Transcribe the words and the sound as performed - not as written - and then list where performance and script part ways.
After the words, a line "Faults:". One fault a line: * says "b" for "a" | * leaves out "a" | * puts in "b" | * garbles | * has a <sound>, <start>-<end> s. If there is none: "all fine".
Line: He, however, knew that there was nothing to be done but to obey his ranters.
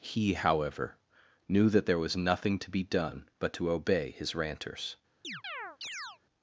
He, however, knew that there was nothing to be done but to obey his ranters.
Faults:
* has a chirp, 5.2-6.2 s